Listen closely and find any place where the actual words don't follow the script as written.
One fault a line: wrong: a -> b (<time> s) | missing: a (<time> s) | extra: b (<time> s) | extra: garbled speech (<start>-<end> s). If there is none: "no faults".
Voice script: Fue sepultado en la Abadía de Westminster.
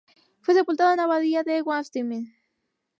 no faults